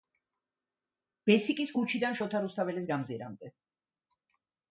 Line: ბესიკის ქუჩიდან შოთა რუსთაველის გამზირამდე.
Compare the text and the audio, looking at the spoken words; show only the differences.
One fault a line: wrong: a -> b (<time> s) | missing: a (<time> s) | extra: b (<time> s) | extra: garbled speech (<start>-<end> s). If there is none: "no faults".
no faults